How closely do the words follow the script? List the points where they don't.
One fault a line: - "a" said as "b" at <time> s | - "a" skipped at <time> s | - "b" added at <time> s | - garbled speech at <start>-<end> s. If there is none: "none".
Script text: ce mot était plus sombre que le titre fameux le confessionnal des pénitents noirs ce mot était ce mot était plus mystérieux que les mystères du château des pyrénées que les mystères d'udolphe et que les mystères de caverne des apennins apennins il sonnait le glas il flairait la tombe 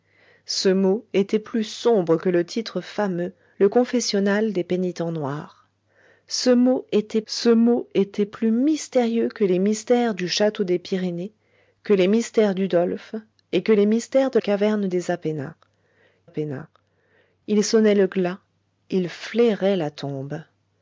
none